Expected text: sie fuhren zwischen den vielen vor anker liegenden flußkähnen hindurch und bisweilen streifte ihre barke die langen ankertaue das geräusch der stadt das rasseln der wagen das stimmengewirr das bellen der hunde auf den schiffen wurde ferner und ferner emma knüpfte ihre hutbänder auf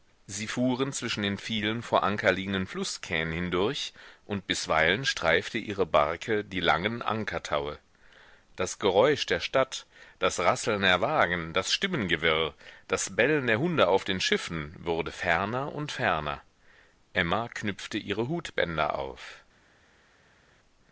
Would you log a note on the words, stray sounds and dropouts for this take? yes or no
no